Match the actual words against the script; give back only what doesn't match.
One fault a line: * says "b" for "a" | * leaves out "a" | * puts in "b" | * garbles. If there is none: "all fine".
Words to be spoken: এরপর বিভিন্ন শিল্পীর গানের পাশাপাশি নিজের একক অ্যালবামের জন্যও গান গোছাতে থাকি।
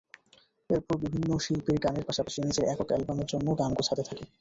all fine